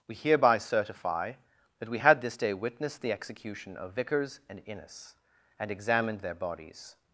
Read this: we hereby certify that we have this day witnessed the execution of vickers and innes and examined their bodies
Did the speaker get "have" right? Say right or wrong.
wrong